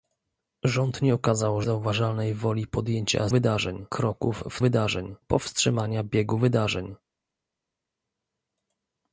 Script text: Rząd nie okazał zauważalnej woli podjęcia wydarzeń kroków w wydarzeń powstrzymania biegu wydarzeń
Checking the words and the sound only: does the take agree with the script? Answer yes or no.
yes